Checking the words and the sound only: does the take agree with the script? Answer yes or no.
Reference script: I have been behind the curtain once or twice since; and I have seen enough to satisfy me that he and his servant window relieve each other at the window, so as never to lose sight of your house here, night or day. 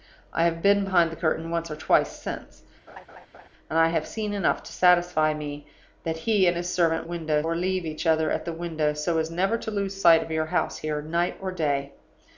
no